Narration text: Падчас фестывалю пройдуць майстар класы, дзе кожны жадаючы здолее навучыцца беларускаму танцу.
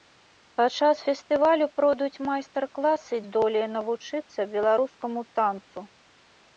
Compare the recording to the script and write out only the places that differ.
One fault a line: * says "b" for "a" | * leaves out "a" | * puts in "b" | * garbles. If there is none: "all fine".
* leaves out "дзе кожны жадаючы"